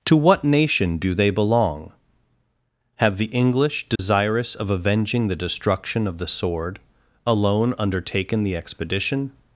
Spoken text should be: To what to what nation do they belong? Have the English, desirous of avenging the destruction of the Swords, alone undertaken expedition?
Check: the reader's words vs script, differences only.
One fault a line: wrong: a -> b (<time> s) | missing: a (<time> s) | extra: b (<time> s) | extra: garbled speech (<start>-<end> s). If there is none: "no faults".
missing: to what (0.4 s)
wrong: Swords -> Sword (6.3 s)
extra: the (8.4 s)